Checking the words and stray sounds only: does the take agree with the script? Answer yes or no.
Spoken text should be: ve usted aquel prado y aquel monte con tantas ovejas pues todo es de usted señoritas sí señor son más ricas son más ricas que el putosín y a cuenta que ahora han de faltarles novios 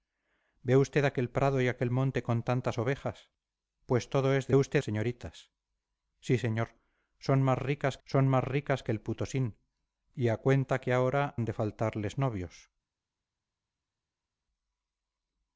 yes